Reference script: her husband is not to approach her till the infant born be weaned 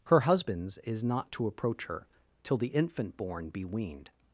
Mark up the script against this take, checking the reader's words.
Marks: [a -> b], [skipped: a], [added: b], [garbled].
her [husband -> husbands] is not to approach her till the infant born be weaned